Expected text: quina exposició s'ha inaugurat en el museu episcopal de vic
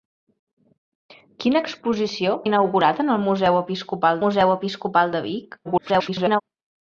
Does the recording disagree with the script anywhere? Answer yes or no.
yes